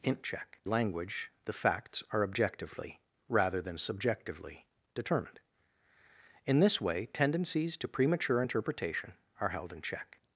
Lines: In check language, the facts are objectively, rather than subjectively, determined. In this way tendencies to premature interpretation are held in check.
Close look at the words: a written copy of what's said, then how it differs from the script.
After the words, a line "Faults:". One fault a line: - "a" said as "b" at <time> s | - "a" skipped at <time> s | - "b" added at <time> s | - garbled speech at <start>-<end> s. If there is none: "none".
In check language, the facts are objectively, rather than subjectively, determined. In this way tendencies to premature interpretation are held in check.
Faults:
none